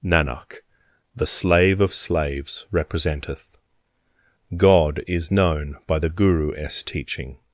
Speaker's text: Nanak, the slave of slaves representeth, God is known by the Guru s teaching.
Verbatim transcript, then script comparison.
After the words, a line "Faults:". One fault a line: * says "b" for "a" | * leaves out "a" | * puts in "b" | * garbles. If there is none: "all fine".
Nanak, the slave of slaves representeth, God is known by the Guru s teaching.
Faults:
all fine